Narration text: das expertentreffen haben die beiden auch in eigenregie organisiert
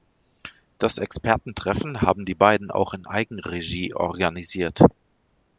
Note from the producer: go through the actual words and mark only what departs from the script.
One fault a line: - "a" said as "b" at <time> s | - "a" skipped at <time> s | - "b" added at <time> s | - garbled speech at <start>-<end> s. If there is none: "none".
none